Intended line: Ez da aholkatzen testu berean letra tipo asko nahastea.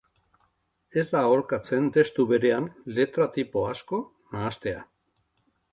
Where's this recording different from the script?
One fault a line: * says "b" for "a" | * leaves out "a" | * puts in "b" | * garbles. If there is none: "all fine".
all fine